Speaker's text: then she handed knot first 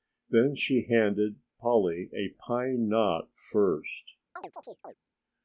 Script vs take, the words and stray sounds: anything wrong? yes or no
yes